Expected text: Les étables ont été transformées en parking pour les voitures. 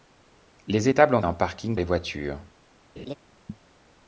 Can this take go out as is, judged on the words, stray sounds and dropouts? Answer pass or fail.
fail